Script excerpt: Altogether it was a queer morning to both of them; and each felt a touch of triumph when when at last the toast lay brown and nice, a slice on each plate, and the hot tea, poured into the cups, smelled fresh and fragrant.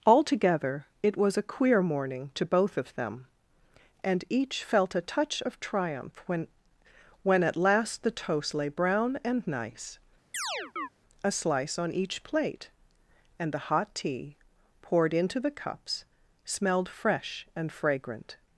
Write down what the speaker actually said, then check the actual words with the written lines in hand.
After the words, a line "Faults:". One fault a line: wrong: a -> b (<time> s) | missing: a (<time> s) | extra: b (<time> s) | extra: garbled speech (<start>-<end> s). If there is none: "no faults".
Altogether it was a queer morning to both of them; and each felt a touch of triumph when when at last the toast lay brown and nice, a slice on each plate, and the hot tea, poured into the cups, smelled fresh and fragrant.
Faults:
no faults